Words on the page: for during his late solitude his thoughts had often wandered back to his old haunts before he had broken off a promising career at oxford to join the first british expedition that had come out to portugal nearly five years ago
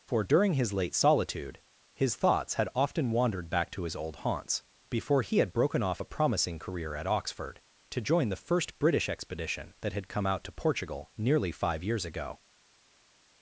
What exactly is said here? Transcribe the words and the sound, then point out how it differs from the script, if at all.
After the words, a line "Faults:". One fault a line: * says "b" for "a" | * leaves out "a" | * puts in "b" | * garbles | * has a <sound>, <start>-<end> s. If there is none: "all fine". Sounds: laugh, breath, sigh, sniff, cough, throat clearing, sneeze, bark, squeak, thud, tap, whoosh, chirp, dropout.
for during his late solitude his thoughts had often wandered back to his old haunts before he had broken off a promising career at oxford to join the first british expedition that had come out to portugal nearly five years ago
Faults:
all fine